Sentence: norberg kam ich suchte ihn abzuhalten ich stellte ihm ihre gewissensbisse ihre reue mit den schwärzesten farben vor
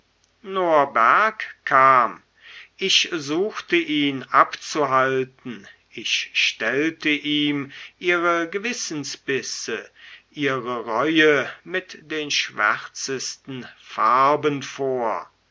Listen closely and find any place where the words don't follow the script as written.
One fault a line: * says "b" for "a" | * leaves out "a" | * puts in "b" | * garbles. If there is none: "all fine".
all fine